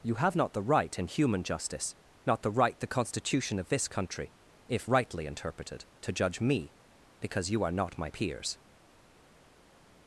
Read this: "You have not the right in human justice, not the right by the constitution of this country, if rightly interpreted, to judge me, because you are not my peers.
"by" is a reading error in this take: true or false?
true